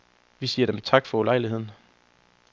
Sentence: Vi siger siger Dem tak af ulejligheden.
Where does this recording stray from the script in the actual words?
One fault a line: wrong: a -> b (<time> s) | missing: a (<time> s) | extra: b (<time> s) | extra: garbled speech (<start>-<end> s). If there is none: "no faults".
missing: siger (0.7 s)
wrong: af -> for (1.1 s)